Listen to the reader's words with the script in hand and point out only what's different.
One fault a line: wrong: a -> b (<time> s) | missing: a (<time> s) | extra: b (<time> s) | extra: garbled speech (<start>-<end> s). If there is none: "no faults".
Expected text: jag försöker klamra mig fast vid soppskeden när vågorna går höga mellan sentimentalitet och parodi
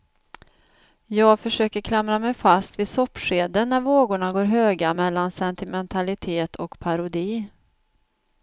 no faults